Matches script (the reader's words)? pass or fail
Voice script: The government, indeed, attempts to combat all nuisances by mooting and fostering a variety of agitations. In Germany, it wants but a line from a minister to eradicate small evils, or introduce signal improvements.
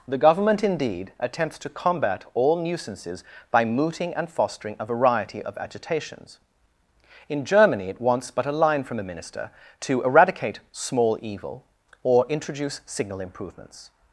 fail